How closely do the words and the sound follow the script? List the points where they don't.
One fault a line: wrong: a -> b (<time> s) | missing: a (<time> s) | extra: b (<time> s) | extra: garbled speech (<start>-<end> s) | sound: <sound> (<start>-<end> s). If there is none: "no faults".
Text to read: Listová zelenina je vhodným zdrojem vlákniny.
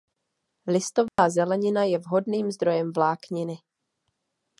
sound: dropout (1.1-1.2 s)